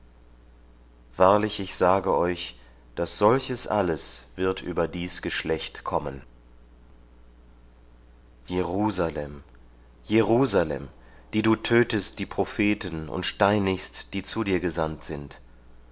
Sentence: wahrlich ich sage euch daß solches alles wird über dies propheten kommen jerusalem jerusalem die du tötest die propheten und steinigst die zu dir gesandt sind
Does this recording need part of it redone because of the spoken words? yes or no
yes